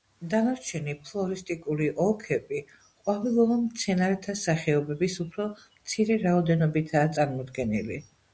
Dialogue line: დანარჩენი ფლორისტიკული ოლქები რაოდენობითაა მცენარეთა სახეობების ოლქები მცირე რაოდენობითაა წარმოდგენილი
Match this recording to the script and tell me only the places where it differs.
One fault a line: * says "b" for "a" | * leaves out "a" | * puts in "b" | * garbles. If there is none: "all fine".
* says "ყვავილოვან" for "რაოდენობითაა"
* says "უფრო" for "ოლქები"